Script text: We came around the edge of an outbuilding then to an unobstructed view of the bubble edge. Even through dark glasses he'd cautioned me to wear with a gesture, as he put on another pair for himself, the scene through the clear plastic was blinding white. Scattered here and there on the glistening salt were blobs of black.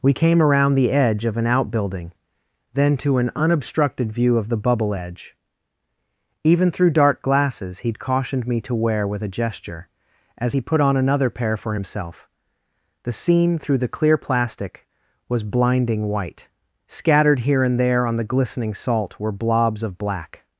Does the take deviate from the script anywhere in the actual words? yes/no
no